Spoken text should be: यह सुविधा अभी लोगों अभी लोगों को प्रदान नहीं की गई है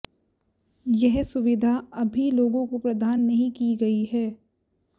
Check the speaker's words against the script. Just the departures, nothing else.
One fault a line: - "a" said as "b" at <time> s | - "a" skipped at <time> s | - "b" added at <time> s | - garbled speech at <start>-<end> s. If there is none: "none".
- "अभी लोगों" skipped at 2.6 s